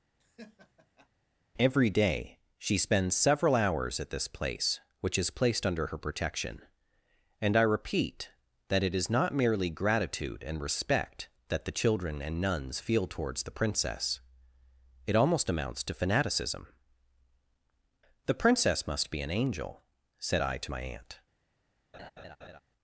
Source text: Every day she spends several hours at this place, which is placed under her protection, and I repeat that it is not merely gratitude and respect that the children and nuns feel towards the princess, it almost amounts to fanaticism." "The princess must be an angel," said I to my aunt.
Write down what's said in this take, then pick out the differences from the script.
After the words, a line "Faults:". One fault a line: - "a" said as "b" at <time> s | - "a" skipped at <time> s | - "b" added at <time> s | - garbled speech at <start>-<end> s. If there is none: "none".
Every day she spends several hours at this place, which is placed under her protection, and I repeat that it is not merely gratitude and respect that the children and nuns feel towards the princess, it almost amounts to fanaticism." "The princess must be an angel," said I to my aunt.
Faults:
none